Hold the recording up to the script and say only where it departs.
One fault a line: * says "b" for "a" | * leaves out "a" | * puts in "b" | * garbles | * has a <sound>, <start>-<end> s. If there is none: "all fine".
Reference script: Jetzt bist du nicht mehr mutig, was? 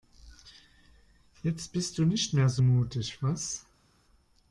* puts in "so"